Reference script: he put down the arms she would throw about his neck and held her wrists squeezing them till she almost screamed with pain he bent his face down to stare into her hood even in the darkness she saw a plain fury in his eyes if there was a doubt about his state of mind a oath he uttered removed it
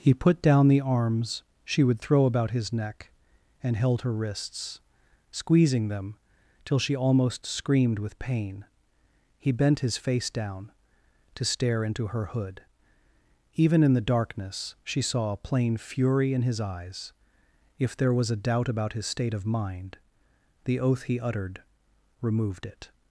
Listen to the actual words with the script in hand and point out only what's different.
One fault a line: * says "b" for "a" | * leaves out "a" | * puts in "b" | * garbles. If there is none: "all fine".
* says "the" for "a"